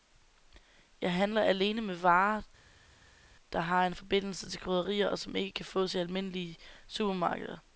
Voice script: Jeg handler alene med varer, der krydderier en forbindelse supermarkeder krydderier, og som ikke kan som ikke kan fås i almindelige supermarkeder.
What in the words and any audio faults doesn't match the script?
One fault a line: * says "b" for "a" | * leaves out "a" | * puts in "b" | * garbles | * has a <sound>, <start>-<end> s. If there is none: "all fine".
* says "har" for "krydderier"
* says "til" for "supermarkeder"
* leaves out "som ikke kan"